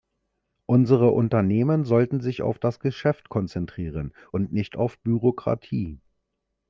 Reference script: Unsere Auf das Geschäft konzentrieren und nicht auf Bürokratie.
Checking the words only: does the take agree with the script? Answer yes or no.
no